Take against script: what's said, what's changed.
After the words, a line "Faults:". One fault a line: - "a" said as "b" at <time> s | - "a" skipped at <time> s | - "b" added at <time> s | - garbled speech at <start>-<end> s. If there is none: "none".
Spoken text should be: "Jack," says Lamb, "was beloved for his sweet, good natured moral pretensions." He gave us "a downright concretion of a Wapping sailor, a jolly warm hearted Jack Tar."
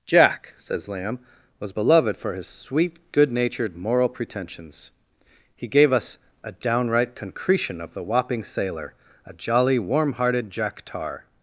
"Jack," says Lamb, "was beloved for his sweet, good natured moral pretensions." He gave us "a downright concretion of the Wapping sailor, a jolly warm hearted Jack Tar."
Faults:
- "a" said as "the" at 7.9 s